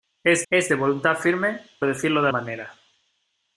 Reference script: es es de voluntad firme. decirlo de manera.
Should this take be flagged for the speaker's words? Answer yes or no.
no